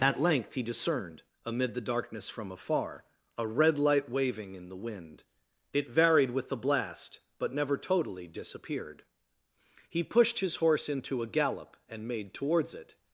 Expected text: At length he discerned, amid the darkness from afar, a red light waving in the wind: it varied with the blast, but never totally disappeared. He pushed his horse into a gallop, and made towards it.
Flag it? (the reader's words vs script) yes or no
no